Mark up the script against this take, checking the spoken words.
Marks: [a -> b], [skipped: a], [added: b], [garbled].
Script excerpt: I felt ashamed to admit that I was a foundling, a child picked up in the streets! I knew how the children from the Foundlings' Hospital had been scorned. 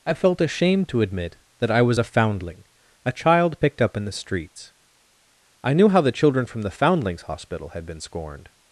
I felt ashamed to admit that I was a foundling, a child picked up in the streets! I knew how the children from the Foundlings' Hospital had been scorned.